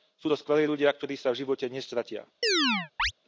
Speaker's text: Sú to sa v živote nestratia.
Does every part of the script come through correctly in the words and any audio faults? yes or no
no